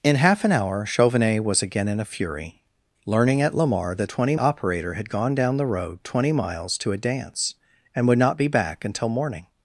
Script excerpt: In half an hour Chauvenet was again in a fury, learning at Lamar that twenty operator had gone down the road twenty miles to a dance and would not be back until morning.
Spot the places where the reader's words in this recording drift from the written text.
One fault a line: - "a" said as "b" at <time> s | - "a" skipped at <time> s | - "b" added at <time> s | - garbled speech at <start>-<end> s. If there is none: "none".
none